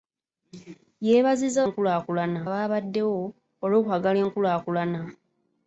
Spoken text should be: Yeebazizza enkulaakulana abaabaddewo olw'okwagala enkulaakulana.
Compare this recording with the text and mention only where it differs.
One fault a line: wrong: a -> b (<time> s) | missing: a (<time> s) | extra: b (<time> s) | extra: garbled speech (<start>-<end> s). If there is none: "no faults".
no faults